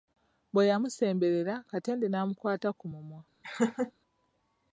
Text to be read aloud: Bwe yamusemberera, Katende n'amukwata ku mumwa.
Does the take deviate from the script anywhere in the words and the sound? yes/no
yes